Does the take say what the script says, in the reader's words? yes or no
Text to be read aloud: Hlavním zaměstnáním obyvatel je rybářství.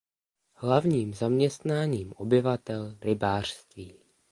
no